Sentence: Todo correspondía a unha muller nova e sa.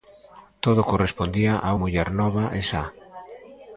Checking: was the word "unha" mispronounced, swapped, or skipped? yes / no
yes